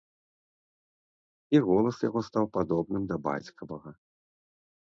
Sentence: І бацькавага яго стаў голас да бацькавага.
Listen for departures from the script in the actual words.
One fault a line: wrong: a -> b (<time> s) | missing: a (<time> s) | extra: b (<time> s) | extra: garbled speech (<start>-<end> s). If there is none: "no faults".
wrong: бацькавага -> голас (1.7 s)
wrong: голас -> падобным (2.6 s)